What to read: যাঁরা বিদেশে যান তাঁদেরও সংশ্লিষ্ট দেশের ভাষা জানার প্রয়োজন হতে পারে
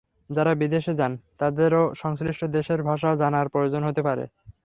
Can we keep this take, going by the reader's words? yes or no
yes